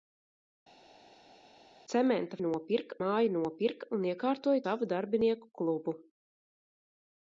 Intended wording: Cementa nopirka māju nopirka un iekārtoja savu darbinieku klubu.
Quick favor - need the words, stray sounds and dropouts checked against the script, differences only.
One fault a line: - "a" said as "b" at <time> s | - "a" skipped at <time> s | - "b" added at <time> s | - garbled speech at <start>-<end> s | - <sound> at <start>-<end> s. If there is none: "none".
none